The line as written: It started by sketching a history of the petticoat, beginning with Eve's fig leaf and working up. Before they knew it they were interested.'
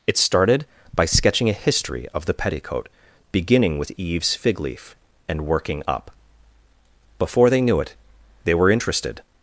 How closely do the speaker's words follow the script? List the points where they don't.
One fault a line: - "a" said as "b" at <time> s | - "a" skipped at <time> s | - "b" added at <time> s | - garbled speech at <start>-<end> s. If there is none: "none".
none